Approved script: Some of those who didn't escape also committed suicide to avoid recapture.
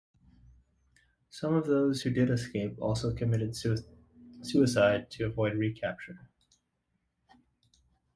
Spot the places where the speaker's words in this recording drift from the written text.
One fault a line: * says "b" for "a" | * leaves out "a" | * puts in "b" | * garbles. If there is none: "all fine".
* says "did" for "didn't"